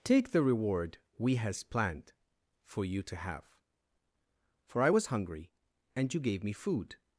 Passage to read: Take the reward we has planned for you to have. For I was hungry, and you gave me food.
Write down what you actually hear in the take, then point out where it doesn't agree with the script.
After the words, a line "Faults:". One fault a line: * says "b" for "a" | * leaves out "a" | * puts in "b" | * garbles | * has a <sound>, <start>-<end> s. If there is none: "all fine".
Take the reward we has planned for you to have. For I was hungry, and you gave me food.
Faults:
all fine